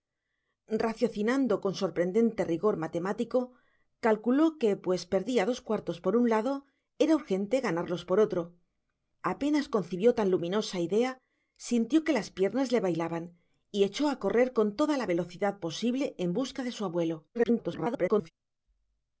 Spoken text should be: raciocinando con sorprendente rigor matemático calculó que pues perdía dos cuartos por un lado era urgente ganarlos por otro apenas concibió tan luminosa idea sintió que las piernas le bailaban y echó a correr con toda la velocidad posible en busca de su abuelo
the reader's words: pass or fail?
fail